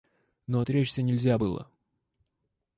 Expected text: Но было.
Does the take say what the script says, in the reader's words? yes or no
no